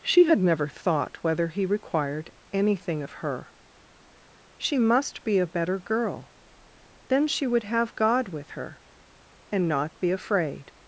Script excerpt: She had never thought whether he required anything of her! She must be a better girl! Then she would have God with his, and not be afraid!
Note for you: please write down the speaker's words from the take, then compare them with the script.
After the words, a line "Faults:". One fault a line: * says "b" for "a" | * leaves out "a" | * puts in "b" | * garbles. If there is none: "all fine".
She had never thought whether he required anything of her! She must be a better girl! Then she would have God with her, and not be afraid!
Faults:
* says "her" for "his"